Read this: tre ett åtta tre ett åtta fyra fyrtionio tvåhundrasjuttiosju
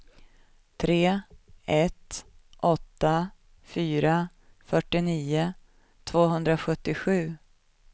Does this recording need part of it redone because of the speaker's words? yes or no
yes